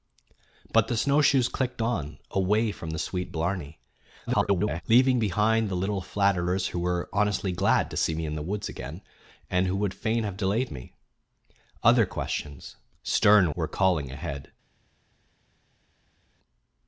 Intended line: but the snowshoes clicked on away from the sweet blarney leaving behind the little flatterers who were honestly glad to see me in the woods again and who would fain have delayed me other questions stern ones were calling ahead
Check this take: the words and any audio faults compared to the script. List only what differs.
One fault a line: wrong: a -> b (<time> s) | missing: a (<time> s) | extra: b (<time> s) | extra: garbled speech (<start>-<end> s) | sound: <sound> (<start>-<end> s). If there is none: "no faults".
extra: garbled speech (4.3-4.8 s)
missing: ones (13.5 s)